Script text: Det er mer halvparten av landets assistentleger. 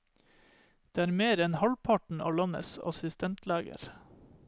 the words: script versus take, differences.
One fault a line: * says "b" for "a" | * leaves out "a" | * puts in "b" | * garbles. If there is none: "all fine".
* puts in "enn"